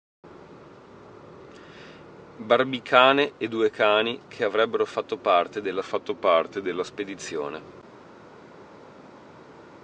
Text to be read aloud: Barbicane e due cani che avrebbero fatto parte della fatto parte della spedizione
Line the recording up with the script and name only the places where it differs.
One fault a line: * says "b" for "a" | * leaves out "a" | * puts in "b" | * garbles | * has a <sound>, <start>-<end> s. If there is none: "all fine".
all fine